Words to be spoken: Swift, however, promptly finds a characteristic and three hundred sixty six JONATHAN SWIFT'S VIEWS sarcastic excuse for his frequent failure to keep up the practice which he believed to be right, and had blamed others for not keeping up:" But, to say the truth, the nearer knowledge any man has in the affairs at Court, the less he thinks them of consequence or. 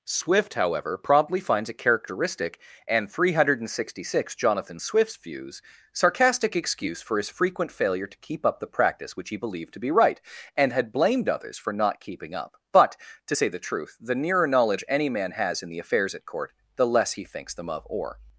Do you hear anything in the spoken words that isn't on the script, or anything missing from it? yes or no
yes